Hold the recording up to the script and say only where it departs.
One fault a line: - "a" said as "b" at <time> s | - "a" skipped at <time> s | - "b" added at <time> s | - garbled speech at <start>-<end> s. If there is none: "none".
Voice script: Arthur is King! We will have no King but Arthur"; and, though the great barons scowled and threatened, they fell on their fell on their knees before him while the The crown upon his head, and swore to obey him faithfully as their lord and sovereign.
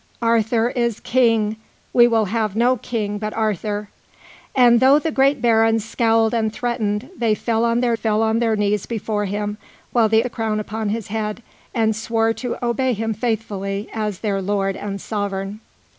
none